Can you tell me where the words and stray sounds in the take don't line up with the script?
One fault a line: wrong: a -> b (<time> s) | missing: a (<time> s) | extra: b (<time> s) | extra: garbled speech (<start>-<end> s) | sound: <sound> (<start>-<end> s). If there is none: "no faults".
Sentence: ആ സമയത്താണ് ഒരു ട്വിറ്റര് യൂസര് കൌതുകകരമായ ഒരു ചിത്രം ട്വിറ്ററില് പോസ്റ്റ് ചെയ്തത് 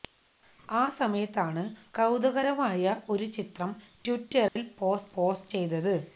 missing: ഒരു ട്വിറ്റര് യൂസര് (1.6 s)
sound: dropout (4.5-4.6 s)
extra: പോസ്റ്റ് (5.2 s)